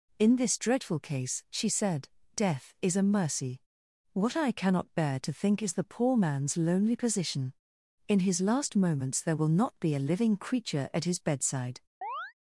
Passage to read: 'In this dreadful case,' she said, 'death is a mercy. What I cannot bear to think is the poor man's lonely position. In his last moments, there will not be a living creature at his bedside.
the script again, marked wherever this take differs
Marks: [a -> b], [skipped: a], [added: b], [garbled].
'In this dreadful case,' she said, 'death is a mercy. What I cannot bear to think is the poor man's lonely position. In his last moments, there will not be a living creature at his bedside.